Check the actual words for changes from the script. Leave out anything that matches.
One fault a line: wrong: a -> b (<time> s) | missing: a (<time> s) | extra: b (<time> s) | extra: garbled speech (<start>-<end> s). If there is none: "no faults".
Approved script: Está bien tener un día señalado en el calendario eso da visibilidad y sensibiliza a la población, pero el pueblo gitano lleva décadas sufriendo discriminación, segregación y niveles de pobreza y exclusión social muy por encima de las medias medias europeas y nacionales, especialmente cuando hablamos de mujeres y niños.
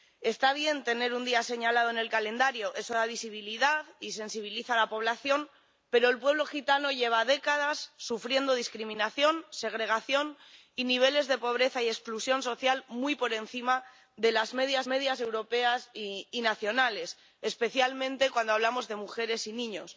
no faults